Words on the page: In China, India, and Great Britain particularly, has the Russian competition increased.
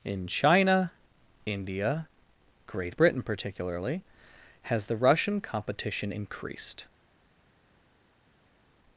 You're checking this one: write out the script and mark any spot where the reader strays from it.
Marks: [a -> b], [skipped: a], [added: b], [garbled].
In China, India, [skipped: and] Great Britain particularly, has the Russian competition increased.